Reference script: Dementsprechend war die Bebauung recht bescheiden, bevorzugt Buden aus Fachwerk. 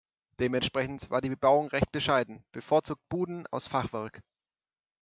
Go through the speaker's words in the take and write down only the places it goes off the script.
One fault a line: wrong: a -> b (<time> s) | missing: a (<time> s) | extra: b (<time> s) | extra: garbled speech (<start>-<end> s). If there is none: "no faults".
no faults